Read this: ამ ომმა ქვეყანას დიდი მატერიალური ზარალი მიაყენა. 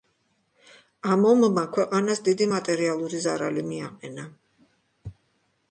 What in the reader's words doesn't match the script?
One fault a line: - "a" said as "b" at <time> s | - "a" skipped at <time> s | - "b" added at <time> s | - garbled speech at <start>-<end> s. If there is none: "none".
none